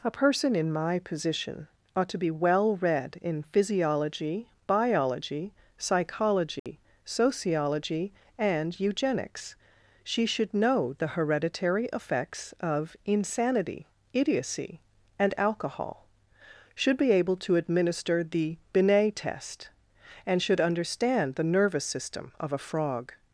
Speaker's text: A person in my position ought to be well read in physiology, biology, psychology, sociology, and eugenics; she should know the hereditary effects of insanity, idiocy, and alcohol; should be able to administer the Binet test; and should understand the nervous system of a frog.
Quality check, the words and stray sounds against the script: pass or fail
fail